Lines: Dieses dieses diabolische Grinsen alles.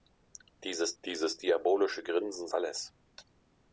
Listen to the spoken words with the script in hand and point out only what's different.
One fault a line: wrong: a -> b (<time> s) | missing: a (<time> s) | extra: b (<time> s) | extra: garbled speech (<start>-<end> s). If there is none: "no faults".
no faults